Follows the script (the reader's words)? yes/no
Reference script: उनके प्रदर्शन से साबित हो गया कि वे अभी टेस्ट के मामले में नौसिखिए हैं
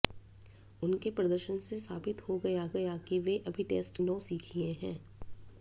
no